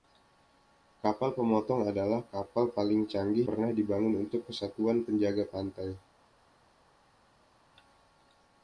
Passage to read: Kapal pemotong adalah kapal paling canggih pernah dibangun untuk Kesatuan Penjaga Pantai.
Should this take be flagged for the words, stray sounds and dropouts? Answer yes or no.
no